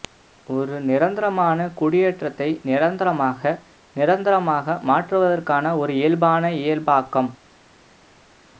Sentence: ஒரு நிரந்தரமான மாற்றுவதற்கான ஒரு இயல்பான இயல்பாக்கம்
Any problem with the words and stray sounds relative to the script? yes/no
yes